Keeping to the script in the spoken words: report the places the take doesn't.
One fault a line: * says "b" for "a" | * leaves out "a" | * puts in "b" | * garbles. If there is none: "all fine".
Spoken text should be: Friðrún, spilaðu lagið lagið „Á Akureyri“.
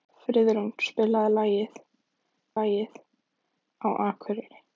all fine